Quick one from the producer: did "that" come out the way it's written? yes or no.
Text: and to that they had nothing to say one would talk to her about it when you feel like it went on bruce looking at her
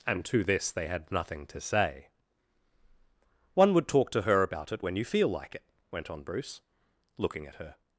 no